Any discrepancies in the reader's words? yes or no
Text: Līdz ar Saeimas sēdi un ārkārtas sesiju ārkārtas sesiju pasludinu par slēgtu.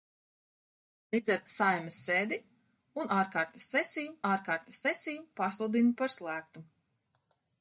no